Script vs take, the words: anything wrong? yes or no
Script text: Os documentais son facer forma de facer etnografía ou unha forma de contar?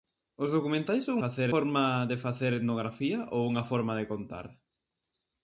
no